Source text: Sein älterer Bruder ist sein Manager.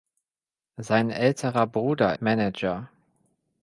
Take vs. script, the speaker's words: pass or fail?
fail